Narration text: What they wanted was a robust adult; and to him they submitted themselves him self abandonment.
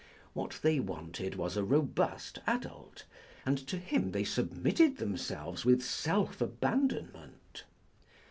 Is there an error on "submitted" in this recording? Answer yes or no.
no